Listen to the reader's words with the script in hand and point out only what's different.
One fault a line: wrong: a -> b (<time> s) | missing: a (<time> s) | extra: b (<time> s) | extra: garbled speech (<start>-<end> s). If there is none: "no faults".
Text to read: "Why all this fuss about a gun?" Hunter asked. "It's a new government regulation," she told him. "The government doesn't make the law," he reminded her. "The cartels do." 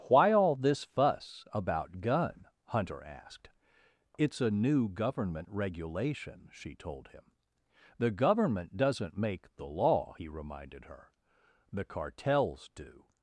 missing: a (2.0 s)